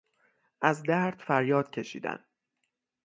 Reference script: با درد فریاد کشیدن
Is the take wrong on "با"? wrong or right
wrong